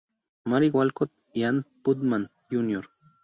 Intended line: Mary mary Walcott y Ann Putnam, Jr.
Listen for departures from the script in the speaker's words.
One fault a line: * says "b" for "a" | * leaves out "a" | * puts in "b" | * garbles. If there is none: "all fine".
* leaves out "mary"